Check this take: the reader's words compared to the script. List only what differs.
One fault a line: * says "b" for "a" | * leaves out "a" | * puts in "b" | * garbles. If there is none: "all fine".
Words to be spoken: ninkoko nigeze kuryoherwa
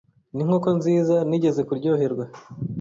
* puts in "nziza"